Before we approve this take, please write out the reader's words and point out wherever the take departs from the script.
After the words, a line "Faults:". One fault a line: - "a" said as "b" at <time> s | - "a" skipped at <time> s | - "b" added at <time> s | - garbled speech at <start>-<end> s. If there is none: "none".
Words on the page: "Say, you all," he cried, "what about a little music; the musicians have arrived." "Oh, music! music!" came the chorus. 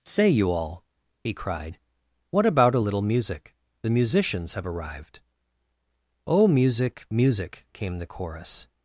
"Say, you all," he cried, "what about a little music; the musicians have arrived." "Oh, music! music!" came the chorus.
Faults:
none